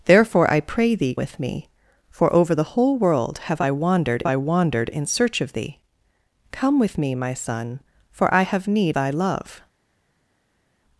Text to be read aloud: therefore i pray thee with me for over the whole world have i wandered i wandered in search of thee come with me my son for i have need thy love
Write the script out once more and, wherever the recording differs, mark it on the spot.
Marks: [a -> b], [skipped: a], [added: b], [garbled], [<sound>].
therefore i pray thee with me for over the whole world have i wandered i wandered in search of thee come with me my son for i have need thy love